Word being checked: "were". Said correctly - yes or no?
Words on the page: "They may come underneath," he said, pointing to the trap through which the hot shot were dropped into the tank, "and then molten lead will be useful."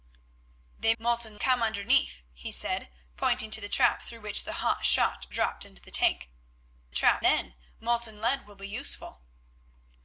no